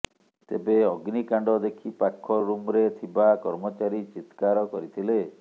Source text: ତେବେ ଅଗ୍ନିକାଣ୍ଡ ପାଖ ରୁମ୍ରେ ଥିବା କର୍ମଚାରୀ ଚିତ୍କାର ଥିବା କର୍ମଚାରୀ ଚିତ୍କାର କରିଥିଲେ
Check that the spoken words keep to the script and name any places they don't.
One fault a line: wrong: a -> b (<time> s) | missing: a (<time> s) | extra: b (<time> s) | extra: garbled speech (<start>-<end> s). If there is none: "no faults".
extra: ଦେଖି (1.6 s)
missing: ଥିବା କର୍ମଚାରୀ ଚିତ୍କାର (4.6 s)